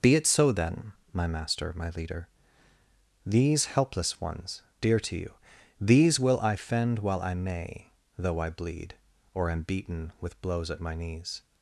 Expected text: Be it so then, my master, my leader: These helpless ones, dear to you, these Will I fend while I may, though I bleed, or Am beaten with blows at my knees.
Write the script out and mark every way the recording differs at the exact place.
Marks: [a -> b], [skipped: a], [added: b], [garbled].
Be it so then, my master, my leader: These helpless ones, dear to you, these Will I fend while I may, though I bleed, or Am beaten with blows at my knees.